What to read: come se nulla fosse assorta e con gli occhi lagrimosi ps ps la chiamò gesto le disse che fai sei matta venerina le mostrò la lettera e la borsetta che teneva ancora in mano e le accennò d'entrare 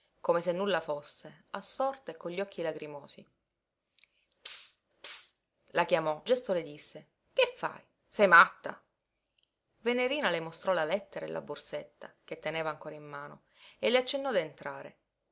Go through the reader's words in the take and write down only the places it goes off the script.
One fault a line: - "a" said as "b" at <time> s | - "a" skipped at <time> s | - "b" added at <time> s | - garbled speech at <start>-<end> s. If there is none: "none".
none